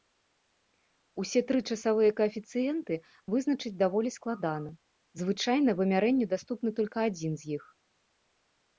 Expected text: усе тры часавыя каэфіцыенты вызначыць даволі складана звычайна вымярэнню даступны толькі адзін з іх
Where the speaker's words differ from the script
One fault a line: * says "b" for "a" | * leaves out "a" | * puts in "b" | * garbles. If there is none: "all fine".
all fine